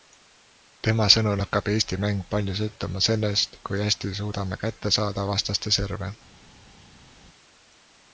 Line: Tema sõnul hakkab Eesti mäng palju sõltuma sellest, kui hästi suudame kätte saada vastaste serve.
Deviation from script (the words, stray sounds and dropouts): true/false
false